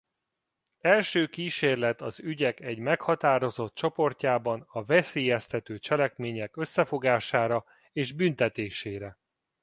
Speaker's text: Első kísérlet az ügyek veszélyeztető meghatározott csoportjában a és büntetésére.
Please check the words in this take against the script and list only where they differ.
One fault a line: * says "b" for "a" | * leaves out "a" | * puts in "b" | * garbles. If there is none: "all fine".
* says "egy" for "veszélyeztető"
* puts in "veszélyeztető cselekmények összefogására"